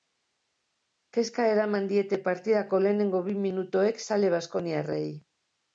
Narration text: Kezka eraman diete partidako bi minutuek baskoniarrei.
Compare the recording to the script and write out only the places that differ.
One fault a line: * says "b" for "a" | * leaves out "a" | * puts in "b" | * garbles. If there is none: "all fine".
* puts in "lehenengo"
* puts in "zale"